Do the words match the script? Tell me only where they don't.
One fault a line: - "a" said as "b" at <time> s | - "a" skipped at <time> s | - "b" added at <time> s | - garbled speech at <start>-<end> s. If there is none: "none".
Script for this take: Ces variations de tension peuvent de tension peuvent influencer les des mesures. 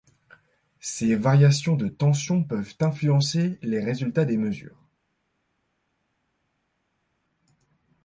- "de tension peuvent" skipped at 2.7 s
- "résultats" added at 3.8 s